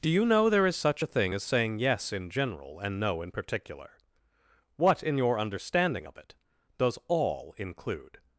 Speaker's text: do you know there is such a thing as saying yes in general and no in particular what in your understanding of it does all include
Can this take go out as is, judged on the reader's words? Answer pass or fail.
pass